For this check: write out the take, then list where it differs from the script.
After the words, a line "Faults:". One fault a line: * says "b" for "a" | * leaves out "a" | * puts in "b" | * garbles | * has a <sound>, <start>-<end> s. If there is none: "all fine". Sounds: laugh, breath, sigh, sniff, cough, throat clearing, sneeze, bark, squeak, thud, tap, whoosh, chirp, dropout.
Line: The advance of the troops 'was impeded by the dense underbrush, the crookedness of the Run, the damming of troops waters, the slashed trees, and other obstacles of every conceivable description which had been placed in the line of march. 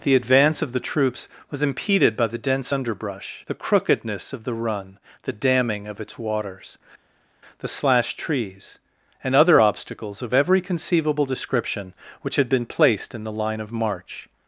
The advance of the troops 'was impeded by the dense underbrush, the crookedness of the Run, the damming of its waters, the slashed trees, and other obstacles of every conceivable description which had been placed in the line of march.
Faults:
* says "its" for "troops"